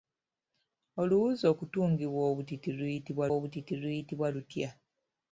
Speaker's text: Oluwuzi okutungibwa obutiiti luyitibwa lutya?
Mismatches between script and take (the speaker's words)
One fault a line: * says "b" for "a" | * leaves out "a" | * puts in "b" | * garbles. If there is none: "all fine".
* puts in "obutiiti luyitibwa"